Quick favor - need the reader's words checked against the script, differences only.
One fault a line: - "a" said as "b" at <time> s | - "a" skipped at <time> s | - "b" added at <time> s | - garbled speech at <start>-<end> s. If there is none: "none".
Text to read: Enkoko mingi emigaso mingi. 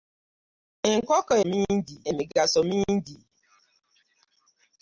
none